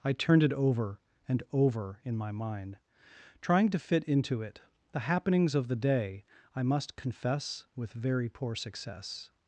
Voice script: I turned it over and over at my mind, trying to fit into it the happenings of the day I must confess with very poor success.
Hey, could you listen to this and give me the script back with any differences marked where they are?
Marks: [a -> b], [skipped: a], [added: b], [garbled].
I turned it over and over [at -> in] my mind, trying to fit into it the happenings of the day I must confess with very poor success.